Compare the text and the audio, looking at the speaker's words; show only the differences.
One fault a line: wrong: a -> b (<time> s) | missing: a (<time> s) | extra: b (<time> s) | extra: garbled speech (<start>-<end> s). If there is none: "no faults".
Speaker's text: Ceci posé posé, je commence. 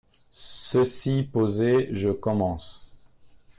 missing: posé (1.9 s)